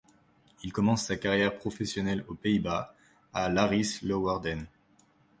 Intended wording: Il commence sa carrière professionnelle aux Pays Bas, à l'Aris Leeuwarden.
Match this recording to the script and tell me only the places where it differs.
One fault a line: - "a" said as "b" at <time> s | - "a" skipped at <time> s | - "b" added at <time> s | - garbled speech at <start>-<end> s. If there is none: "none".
none